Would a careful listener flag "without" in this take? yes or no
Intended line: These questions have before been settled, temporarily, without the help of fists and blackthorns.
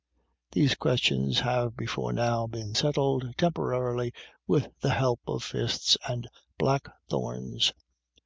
yes